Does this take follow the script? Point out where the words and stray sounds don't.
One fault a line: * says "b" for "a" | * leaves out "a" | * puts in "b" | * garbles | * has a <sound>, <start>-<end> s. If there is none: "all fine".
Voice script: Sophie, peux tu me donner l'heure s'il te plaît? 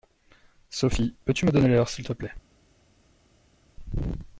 all fine